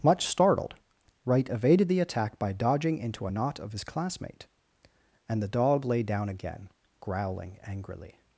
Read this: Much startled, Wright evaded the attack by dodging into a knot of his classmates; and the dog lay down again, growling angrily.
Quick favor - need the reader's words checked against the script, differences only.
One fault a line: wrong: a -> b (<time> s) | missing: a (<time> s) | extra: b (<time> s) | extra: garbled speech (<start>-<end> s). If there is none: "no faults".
wrong: classmates -> classmate (3.8 s)